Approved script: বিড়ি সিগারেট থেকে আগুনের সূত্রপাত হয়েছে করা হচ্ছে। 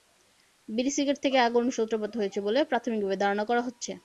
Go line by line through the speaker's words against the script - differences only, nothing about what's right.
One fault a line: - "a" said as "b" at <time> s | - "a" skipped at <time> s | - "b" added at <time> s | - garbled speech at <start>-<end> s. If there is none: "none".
- "বলে প্রাথমিকভাবে ধারণা" added at 2.5 s